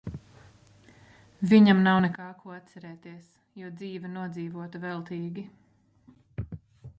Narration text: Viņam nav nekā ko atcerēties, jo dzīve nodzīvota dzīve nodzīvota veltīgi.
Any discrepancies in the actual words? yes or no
yes